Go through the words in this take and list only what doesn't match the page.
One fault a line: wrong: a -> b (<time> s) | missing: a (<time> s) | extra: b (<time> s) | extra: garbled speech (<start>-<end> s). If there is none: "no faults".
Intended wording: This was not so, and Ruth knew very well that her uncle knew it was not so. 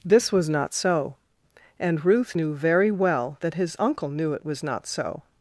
wrong: her -> his (3.5 s)